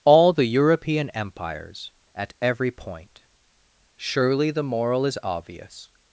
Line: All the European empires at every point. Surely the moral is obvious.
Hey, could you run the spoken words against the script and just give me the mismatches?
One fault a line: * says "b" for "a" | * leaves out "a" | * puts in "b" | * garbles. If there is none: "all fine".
all fine